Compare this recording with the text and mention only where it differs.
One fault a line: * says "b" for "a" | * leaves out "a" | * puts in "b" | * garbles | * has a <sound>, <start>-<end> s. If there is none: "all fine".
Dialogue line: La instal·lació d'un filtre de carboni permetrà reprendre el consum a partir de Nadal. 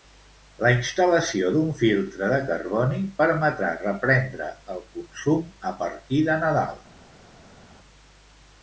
all fine